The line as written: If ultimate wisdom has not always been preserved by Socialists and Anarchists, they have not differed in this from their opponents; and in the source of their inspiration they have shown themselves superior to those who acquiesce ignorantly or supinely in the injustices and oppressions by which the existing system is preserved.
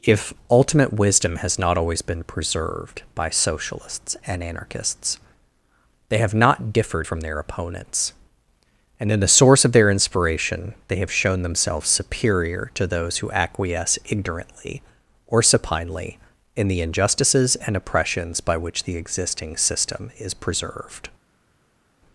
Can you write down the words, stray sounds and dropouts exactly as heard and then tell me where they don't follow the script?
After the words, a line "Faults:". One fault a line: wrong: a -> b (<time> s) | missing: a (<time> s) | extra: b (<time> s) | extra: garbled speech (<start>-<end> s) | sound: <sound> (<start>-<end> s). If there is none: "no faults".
If ultimate wisdom has not always been preserved by Socialists and Anarchists, they have not differed from their opponents; and in the source of their inspiration they have shown themselves superior to those who acquiesce ignorantly or supinely in the injustices and oppressions by which the existing system is preserved.
Faults:
missing: in this (7.1 s)